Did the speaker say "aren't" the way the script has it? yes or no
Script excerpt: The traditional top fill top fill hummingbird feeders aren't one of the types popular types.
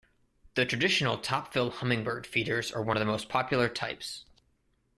no